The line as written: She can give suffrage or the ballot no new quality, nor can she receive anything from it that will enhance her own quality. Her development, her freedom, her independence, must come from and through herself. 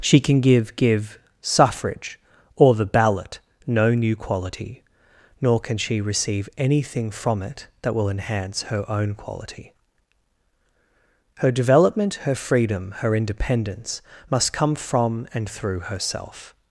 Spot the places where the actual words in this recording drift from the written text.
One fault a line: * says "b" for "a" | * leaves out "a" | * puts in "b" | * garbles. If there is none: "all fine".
* puts in "give"